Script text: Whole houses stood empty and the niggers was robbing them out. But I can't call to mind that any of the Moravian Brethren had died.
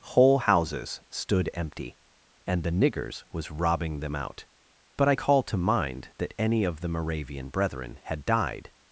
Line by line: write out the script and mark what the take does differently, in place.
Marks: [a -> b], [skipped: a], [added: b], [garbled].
Whole houses stood empty and the niggers was robbing them out. But I [skipped: can't] call to mind that any of the Moravian Brethren had died.